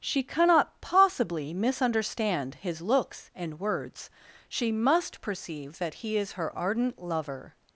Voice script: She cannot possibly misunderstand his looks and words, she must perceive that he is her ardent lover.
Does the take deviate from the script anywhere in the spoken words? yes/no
no